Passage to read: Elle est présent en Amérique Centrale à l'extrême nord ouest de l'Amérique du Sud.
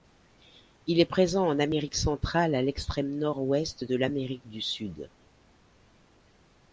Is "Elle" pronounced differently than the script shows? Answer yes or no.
yes